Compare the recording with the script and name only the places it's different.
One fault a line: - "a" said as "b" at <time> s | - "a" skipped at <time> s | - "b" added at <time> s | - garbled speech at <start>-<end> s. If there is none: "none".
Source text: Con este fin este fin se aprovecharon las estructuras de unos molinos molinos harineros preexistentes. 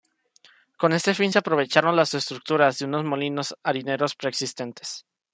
- "este fin" skipped at 1.3 s
- "molinos" skipped at 3.5 s